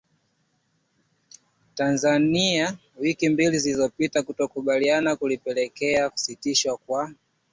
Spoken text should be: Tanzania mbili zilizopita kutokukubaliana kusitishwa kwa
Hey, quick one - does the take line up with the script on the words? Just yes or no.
no